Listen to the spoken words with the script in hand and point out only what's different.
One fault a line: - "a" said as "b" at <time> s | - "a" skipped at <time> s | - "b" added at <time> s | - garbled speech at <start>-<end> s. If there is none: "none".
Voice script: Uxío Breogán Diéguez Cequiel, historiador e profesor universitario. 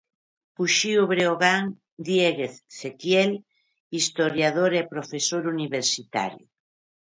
none